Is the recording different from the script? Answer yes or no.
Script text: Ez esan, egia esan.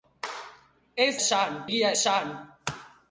no